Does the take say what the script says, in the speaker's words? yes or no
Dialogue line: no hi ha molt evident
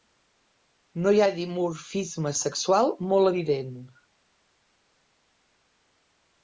no